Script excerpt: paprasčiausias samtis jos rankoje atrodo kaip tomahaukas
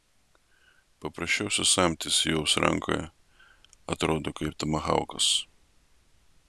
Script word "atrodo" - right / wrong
right